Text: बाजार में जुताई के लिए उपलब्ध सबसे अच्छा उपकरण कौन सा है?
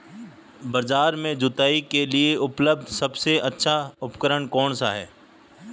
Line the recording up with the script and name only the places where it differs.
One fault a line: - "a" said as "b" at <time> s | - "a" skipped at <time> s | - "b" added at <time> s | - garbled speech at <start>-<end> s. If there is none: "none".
none